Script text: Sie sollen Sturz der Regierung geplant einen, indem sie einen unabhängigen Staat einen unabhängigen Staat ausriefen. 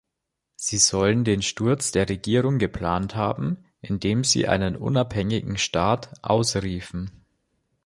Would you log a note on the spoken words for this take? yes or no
yes